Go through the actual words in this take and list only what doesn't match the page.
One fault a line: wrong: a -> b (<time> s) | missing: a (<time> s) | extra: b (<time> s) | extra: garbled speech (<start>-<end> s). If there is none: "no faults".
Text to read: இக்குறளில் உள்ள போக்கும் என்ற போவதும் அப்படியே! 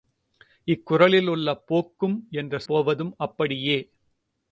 no faults